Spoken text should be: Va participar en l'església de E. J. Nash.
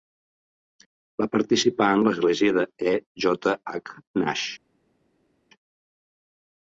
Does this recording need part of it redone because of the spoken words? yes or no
yes